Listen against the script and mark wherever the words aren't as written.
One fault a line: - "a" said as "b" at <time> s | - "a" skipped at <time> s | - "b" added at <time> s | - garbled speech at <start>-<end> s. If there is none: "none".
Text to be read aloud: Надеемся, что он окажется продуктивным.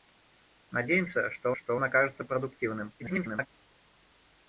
- "что" added at 1.5 s
- garbled speech at 3.0-3.5 s